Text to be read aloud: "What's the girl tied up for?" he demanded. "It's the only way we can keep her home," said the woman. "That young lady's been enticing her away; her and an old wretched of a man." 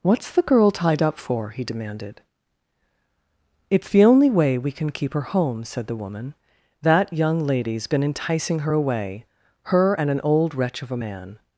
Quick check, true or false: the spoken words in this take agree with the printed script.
false